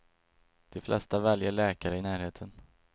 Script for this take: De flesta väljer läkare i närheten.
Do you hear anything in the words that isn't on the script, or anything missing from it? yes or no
no